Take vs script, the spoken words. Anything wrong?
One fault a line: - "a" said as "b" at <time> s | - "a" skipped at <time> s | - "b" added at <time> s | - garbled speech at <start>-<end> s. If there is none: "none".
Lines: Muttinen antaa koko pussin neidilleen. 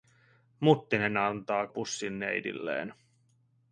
- "koko" skipped at 1.7 s